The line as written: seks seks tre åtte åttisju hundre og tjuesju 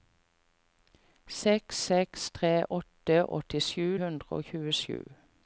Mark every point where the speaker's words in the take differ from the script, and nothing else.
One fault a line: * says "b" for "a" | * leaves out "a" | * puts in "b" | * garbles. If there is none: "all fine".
all fine